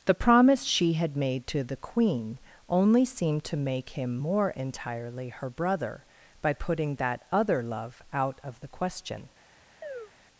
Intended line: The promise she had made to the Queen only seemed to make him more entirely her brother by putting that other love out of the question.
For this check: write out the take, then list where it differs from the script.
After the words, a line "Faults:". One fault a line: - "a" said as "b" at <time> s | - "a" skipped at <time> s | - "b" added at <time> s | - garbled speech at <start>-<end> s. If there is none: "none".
The promise she had made to the Queen only seemed to make him more entirely her brother by putting that other love out of the question.
Faults:
none